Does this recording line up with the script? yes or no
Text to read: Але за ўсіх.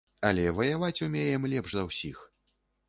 no